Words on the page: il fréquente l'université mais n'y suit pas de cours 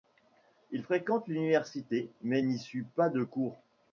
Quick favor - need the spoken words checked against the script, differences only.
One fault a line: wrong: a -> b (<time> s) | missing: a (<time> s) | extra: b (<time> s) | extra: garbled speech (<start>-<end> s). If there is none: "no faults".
no faults